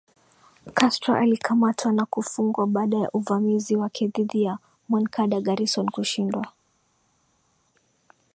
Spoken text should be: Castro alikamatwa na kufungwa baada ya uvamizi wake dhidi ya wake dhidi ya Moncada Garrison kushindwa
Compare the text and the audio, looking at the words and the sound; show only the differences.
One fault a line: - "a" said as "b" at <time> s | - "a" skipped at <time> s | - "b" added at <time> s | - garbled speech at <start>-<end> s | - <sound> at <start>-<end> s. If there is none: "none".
- "wake dhidi ya" skipped at 4.6 s